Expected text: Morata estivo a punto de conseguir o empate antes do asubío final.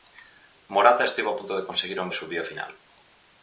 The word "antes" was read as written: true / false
false